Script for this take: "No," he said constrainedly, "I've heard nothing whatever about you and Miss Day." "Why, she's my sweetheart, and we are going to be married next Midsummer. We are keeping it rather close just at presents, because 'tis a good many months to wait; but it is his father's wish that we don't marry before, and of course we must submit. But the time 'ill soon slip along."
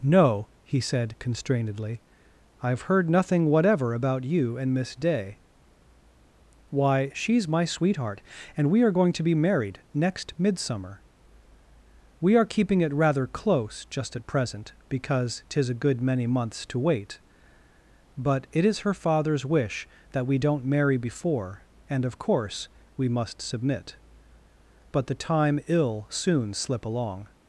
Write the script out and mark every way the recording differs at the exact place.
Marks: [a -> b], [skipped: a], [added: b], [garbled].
"No," he said constrainedly, "I've heard nothing whatever about you and Miss Day." "Why, she's my sweetheart, and we are going to be married next Midsummer. We are keeping it rather close just at [presents, -> present] because 'tis a good many months to wait; but it is [his -> her] father's wish that we don't marry before, and of course we must submit. But the time 'ill soon slip along."